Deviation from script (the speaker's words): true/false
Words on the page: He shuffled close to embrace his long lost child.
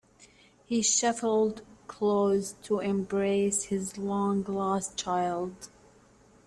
false